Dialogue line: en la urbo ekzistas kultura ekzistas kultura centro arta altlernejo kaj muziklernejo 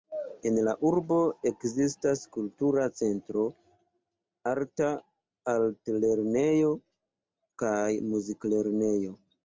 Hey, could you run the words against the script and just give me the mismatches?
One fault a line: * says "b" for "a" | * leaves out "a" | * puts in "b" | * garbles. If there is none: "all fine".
* leaves out "ekzistas kultura"